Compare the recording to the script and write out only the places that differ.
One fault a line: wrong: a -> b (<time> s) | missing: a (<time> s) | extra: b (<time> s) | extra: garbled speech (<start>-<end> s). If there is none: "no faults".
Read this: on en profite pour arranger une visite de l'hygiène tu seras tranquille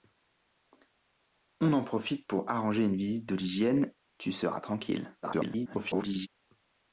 extra: garbled speech (5.2-6.3 s)